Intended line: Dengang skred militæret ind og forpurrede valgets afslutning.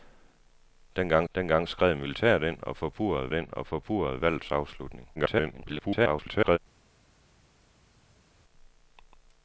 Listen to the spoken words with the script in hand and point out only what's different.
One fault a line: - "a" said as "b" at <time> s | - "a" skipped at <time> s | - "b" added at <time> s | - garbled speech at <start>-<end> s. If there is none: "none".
- "dengang" added at 1.3 s
- "ind og forpurrede" added at 3.3 s
- garbled speech at 5.2-6.6 s